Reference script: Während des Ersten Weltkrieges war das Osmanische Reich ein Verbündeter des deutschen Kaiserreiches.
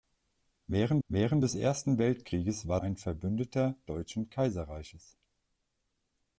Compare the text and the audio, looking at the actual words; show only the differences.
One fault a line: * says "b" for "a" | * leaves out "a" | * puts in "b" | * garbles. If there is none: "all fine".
* puts in "während"
* leaves out "das Osmanische Reich"
* leaves out "des"